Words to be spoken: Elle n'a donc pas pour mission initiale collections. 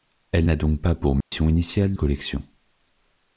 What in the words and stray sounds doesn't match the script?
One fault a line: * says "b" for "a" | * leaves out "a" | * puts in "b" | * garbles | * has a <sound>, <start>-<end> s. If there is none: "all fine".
* has a dropout, 1.2-1.3 s